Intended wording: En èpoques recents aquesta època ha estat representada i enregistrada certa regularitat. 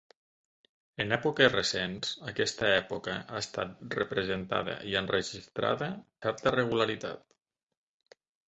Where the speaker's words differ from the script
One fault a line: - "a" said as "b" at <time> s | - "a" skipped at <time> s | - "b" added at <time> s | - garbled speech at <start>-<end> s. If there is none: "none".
none